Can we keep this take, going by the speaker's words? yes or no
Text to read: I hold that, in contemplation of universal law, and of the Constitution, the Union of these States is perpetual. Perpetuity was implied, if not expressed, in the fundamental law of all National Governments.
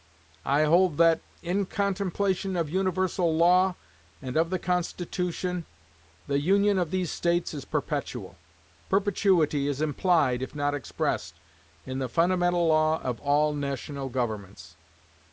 no